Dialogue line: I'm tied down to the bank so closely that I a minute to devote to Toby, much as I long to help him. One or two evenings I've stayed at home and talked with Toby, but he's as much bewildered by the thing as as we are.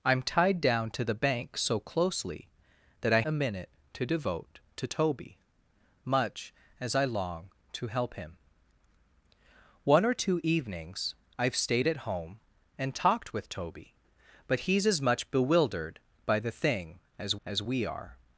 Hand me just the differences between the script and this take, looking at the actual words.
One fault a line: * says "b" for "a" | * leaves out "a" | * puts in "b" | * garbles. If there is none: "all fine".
all fine